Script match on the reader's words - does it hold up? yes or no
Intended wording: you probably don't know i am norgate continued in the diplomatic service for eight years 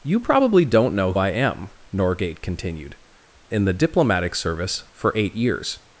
yes